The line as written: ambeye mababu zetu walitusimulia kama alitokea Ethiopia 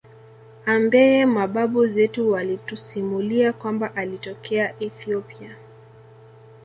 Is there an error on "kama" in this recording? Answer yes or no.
yes